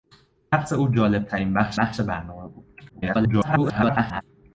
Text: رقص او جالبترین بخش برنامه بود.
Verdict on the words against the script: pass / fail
fail